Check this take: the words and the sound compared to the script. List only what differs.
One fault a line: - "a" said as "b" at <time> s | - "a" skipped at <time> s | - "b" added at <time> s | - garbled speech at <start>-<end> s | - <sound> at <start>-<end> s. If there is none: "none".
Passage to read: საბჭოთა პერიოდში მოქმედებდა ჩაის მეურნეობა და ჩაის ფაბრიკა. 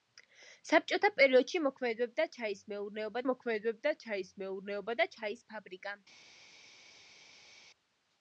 - "მოქმედებდა ჩაის მეურნეობა" added at 3.3 s